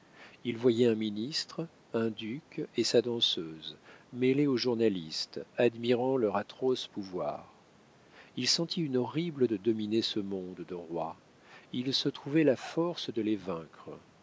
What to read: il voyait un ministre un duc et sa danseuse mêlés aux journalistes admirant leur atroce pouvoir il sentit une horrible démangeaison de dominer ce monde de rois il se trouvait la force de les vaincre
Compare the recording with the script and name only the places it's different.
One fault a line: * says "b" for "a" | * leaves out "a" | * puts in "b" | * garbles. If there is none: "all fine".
* leaves out "démangeaison"